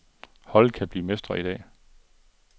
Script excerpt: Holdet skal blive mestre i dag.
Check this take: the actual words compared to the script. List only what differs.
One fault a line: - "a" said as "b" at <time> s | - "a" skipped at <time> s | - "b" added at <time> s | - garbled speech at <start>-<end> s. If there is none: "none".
- "skal" said as "kan" at 0.7 s